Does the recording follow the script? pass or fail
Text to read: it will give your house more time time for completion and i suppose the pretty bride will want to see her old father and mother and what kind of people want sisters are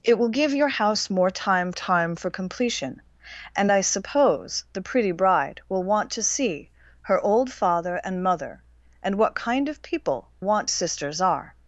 pass